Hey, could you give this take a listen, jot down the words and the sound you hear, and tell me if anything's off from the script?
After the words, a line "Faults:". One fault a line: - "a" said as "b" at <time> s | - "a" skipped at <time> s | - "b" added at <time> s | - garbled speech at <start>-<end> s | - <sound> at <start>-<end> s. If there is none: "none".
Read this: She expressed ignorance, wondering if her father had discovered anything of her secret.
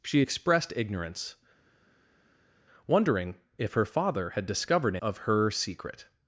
She expressed ignorance, wondering if her father had discovered of her secret.
Faults:
- "anything" skipped at 5.0 s